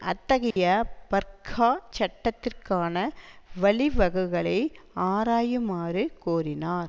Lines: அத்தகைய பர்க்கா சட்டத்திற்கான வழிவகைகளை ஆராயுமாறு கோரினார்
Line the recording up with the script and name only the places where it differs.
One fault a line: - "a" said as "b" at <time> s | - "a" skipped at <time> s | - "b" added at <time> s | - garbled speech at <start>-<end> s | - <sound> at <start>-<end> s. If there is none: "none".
- dropout at 0.5-0.6 s